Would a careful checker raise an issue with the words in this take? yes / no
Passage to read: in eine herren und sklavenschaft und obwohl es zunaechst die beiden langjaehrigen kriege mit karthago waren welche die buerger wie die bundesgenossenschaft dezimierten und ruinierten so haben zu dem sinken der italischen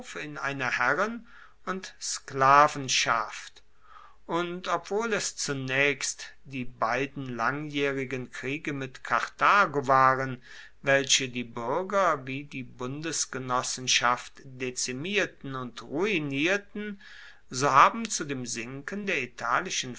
no